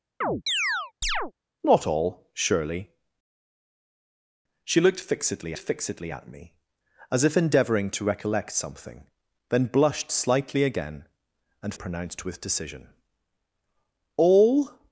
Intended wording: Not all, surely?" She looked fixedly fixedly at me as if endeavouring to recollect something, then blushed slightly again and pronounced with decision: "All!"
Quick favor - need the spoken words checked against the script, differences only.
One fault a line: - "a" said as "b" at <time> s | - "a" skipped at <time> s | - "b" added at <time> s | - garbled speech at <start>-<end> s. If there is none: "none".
none